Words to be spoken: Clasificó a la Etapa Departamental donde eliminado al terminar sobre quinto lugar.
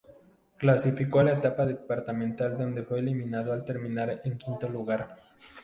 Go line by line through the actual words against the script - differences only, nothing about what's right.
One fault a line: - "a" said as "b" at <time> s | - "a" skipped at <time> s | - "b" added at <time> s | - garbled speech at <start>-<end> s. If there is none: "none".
- "fue" added at 2.8 s
- "sobre" said as "en" at 4.2 s